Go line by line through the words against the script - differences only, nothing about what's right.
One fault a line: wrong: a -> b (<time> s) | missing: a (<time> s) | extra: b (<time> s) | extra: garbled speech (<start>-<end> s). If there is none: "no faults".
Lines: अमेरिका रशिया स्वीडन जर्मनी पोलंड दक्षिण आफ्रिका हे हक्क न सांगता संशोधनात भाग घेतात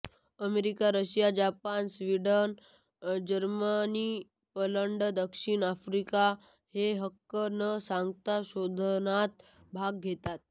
extra: जपान (1.4 s)